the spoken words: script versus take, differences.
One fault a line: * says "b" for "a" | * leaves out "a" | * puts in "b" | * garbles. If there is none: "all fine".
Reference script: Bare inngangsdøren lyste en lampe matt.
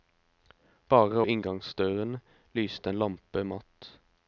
all fine